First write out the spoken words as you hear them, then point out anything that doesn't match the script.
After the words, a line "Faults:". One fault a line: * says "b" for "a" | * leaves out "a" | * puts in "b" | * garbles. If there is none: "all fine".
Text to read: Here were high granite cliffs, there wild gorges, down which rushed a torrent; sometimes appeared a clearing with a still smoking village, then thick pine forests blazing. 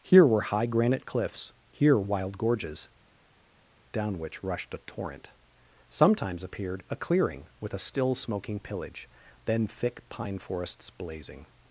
Here were high granite cliffs, here wild gorges, down which rushed a torrent; sometimes appeared a clearing with a still smoking pillage, then thick pine forests blazing.
Faults:
* says "here" for "there"
* says "pillage" for "village"